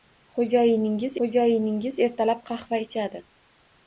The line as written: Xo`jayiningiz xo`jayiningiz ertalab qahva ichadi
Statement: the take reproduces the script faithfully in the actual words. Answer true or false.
true